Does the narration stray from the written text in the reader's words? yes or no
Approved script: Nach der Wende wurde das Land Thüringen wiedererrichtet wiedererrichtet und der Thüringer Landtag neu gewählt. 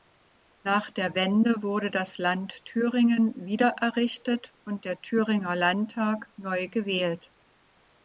yes